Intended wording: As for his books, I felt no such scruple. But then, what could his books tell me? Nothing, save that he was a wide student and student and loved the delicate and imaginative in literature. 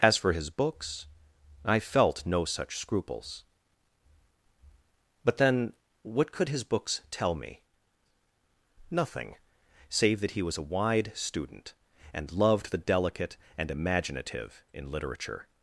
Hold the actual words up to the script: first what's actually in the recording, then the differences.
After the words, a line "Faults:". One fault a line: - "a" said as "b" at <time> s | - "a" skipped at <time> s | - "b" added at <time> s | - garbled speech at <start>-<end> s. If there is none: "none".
As for his books, I felt no such scruples. But then, what could his books tell me? Nothing, save that he was a wide student and loved the delicate and imaginative in literature.
Faults:
- "scruple" said as "scruples" at 2.8 s
- "student and" skipped at 12.3 s